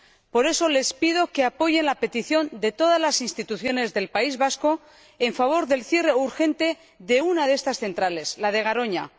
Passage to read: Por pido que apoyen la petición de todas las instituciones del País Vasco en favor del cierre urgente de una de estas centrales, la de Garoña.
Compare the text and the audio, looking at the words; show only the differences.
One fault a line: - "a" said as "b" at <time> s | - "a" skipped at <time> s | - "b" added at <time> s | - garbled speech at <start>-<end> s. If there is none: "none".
- "eso les" added at 0.5 s